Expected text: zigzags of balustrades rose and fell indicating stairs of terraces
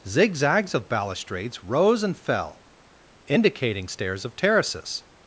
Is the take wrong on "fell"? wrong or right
right